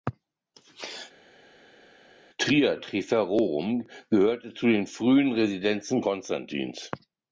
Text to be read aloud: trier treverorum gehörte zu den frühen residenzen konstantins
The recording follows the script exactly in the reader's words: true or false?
true